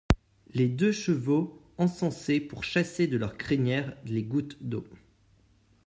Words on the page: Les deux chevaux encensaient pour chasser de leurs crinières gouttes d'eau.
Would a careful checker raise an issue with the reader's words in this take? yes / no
yes